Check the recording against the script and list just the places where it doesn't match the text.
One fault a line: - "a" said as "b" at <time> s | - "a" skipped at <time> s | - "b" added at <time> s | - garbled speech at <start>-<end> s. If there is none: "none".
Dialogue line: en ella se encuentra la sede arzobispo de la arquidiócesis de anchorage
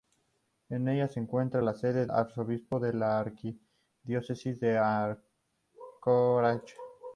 none